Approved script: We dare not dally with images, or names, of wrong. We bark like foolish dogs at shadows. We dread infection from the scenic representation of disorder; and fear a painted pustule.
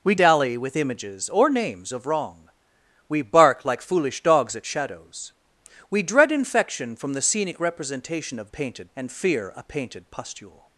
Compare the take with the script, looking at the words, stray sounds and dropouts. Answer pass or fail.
fail